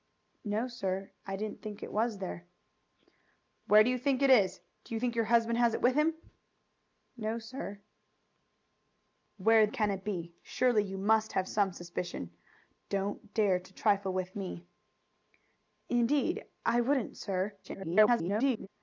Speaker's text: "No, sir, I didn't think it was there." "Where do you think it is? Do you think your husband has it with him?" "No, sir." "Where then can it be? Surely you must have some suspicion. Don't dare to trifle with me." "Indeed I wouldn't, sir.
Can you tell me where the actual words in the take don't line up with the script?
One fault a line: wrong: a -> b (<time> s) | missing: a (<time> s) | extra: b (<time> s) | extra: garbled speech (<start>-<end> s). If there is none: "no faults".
missing: then (9.7 s)
extra: garbled speech (17.6-18.7 s)